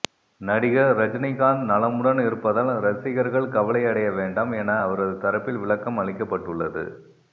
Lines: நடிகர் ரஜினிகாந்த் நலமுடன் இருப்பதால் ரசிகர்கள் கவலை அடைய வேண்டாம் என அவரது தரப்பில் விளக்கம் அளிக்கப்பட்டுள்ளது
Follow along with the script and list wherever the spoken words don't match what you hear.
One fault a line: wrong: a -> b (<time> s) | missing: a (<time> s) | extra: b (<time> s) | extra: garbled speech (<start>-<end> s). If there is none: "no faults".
no faults